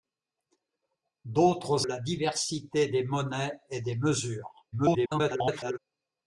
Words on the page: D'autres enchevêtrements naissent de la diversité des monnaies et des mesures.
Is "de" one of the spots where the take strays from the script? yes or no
yes